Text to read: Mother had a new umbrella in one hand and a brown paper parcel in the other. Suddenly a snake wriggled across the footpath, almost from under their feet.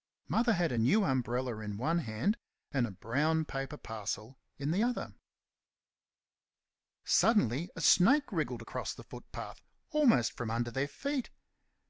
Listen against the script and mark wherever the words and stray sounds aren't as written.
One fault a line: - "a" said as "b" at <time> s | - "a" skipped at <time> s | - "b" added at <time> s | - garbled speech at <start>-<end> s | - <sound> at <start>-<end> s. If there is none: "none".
none